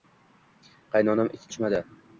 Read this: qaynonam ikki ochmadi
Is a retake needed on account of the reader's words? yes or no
no